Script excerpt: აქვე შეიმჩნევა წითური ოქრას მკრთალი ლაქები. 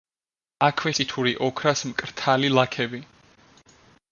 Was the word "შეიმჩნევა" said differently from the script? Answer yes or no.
yes